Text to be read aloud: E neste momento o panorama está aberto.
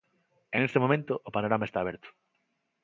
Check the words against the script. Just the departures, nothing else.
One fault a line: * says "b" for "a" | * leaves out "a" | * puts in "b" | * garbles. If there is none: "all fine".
all fine